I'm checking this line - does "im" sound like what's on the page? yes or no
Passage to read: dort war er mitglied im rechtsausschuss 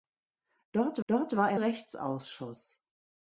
no